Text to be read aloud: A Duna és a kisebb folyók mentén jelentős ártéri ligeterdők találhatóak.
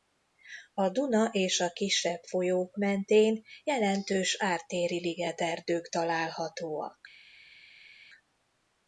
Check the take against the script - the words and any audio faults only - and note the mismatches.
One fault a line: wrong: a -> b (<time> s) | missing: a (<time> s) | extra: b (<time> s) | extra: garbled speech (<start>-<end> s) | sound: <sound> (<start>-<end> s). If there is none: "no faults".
no faults